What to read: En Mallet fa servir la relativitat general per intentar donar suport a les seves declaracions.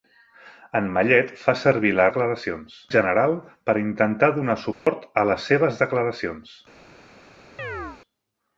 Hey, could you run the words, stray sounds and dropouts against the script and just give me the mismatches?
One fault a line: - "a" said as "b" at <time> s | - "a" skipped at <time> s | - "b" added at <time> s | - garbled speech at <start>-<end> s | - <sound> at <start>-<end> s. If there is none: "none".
- "relativitat" said as "declaracions" at 2.1 s
- dropout at 4.7-4.9 s
- chirp at 7.6-8.0 s